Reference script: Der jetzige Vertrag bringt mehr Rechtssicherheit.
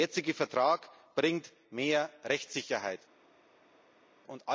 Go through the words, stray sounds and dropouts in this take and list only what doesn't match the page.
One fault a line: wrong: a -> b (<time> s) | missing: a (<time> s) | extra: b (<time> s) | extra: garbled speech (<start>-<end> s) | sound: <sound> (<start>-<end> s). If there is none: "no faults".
no faults